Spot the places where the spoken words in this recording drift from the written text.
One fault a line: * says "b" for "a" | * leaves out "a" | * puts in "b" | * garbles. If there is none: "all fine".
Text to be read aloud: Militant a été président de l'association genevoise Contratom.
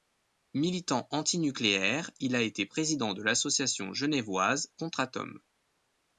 * puts in "anti nucléaire il"